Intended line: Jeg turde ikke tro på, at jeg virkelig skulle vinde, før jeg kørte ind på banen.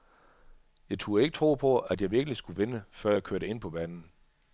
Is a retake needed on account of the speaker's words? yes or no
no